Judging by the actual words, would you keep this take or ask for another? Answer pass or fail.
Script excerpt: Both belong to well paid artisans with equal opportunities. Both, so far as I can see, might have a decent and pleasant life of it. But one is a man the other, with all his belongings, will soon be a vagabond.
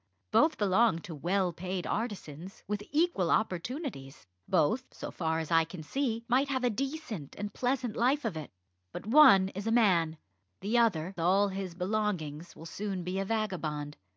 fail